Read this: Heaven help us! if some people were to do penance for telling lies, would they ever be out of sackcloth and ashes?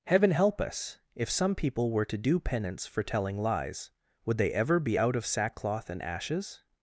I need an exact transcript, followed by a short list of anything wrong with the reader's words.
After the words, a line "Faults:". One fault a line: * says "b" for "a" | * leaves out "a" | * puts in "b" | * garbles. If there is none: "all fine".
Heaven help us! if some people were to do penance for telling lies, would they ever be out of sackcloth and ashes?
Faults:
all fine